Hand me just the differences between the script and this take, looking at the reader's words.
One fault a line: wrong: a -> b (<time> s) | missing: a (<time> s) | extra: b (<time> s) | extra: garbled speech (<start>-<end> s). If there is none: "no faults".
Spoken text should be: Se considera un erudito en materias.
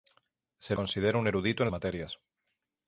no faults